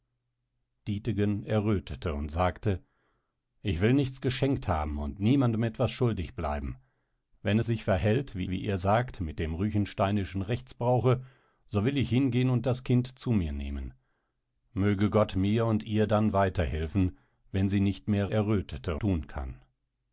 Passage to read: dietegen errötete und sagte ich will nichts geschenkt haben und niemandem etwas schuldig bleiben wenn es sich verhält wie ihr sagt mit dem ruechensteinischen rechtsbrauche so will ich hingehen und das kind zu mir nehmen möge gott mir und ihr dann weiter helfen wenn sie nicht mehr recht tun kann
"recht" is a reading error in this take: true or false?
true